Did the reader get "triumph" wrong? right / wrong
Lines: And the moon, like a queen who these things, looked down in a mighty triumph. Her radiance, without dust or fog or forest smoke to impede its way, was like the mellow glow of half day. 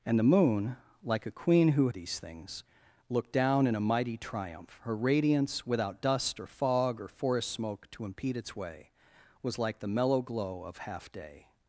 right